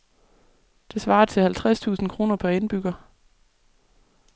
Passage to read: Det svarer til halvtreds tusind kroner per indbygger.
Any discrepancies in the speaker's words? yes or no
no